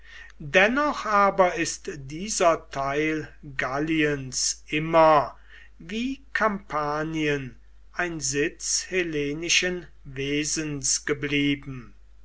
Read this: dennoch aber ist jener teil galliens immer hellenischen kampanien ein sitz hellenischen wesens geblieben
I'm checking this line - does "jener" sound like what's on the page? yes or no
no